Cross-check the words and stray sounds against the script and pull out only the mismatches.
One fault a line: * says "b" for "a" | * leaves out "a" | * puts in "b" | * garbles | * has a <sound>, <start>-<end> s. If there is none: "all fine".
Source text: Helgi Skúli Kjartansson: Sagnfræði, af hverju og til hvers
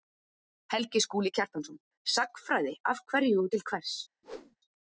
* has a whoosh, 4.2-4.6 s